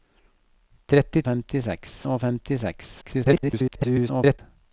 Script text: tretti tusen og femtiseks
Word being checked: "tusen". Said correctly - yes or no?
no